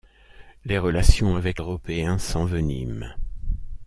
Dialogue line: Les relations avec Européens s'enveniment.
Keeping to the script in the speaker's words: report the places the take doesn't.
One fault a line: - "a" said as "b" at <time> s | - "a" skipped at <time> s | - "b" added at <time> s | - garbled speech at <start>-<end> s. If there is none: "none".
none